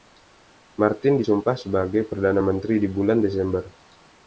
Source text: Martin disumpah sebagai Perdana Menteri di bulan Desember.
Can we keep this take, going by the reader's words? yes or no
yes